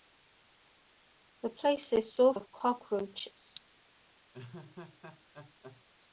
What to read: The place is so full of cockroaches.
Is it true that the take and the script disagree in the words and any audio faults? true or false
true